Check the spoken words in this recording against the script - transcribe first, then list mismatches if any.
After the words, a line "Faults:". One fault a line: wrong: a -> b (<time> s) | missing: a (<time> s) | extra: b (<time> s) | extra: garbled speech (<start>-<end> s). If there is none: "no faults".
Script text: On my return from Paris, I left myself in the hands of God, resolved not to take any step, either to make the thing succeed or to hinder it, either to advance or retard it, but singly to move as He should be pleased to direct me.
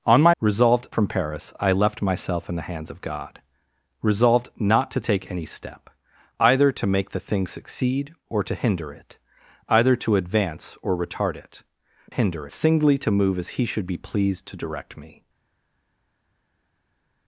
On my resolved from Paris, I left myself in the hands of God, resolved not to take any step, either to make the thing succeed or to hinder it, either to advance or retard it, hinder singly to move as He should be pleased to direct me.
Faults:
wrong: return -> resolved (0.4 s)
wrong: but -> hinder (12.1 s)